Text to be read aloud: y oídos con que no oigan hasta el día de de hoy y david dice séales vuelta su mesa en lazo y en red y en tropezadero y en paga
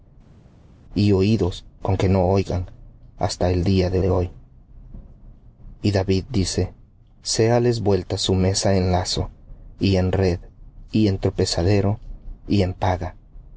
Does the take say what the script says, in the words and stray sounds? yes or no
yes